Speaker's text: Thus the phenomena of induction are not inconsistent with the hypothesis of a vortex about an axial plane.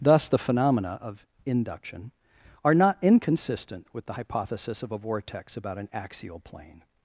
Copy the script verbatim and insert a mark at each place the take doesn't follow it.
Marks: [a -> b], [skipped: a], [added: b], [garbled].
Thus the phenomena of induction are not inconsistent with the hypothesis of a vortex about an axial plane.